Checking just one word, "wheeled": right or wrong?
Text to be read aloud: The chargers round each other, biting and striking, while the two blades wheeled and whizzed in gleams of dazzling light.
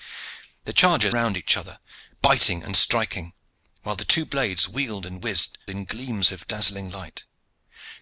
right